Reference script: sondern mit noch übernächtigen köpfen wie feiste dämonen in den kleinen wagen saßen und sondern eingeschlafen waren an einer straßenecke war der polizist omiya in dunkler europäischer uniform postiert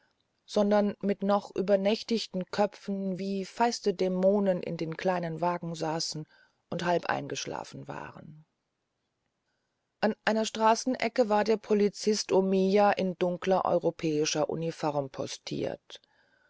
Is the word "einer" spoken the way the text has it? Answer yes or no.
yes